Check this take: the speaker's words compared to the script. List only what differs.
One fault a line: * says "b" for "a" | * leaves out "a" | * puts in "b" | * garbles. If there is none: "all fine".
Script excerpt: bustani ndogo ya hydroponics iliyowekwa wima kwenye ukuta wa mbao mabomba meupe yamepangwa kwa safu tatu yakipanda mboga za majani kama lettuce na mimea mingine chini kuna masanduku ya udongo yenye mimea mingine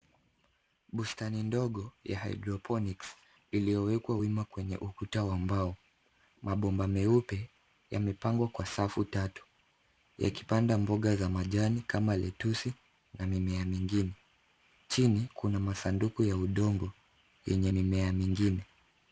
all fine